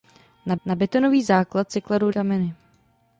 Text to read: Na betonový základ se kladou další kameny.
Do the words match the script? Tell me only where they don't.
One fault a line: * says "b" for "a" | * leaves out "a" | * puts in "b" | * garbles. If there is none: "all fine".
* puts in "na"
* leaves out "další"